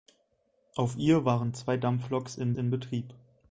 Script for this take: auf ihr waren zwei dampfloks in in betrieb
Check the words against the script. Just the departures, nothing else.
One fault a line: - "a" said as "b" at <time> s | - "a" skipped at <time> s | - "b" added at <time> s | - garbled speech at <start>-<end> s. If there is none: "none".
none